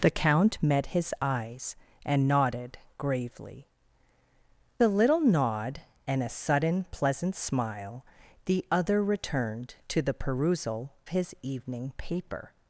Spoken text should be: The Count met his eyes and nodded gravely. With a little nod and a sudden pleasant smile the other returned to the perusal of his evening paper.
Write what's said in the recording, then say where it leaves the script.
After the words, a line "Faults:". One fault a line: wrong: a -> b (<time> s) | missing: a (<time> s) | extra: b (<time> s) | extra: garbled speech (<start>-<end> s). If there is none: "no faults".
The Count met his eyes and nodded gravely. A little nod and a sudden pleasant smile the other returned to the perusal his evening paper.
Faults:
missing: With (3.7 s)
missing: of (10.9 s)